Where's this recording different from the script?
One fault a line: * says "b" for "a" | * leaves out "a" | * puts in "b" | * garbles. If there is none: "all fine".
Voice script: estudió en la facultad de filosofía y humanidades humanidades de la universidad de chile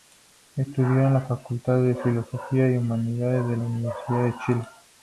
* leaves out "humanidades"